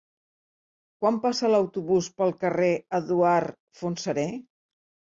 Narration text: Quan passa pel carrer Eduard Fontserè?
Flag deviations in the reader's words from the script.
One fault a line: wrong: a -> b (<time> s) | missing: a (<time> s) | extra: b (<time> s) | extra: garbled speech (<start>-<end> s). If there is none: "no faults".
extra: l'autobús (1.5 s)